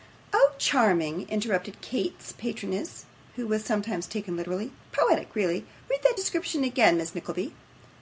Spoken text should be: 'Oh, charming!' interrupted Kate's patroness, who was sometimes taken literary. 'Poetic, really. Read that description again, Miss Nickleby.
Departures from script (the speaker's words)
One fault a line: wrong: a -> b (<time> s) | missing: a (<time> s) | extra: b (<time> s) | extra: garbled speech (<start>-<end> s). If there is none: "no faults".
no faults